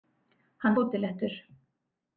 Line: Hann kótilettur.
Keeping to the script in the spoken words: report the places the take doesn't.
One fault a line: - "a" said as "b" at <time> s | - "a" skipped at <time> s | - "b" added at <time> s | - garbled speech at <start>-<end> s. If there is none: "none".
none